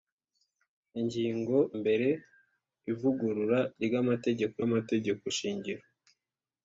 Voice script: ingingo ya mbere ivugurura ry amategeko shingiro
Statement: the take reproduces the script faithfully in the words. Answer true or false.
false